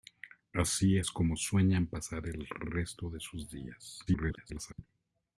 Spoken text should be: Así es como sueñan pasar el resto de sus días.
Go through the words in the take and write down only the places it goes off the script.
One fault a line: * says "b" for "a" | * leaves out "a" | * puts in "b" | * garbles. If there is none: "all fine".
* garbles